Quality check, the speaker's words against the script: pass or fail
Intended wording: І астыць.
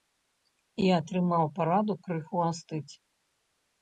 fail